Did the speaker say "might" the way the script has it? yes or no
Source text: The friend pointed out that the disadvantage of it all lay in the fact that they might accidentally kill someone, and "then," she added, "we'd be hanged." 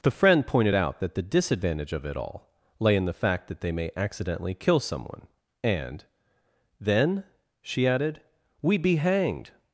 no